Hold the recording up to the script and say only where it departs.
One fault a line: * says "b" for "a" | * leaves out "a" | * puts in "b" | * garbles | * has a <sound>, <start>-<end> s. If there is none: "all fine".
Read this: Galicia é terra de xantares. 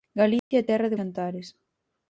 * has a dropout, 0.4-0.5 s